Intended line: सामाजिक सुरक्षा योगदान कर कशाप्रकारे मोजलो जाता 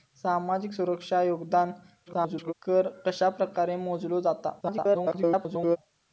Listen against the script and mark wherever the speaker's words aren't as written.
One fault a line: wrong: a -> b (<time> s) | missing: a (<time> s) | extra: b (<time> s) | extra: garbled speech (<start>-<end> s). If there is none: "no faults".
extra: garbled speech (2.1-2.5 s)
extra: garbled speech (4.6-5.8 s)